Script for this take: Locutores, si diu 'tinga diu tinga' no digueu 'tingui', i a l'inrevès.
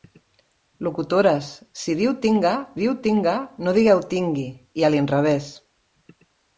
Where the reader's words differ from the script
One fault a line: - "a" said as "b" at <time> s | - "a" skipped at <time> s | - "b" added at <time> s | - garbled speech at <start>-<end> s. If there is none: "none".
none